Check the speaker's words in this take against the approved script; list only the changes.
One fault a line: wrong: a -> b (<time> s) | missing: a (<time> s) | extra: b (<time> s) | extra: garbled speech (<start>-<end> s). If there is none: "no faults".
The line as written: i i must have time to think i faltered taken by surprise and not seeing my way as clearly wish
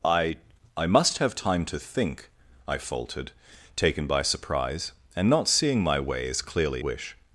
no faults